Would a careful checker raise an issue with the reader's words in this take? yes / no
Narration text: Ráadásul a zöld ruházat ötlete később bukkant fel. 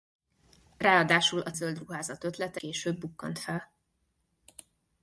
no